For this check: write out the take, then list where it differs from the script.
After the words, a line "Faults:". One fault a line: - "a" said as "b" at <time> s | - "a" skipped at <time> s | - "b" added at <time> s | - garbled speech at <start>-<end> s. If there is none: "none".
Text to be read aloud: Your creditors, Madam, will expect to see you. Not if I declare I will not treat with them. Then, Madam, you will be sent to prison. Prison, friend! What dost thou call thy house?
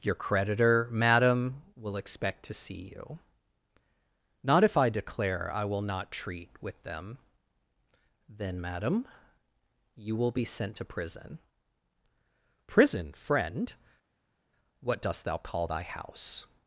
Your creditor, Madam, will expect to see you. Not if I declare I will not treat with them. Then, Madam, you will be sent to prison. Prison, friend! What dost thou call thy house?
Faults:
- "creditors" said as "creditor" at 0.1 s